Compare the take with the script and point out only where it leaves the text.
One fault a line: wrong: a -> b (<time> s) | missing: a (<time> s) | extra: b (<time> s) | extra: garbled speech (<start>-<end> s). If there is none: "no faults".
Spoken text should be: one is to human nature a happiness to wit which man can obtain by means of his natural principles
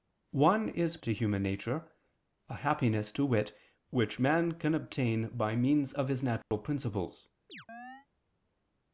no faults